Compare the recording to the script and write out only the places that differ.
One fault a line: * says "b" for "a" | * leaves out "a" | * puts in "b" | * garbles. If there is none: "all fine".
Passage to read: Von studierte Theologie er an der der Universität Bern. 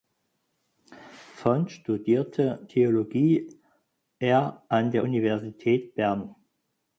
* leaves out "der"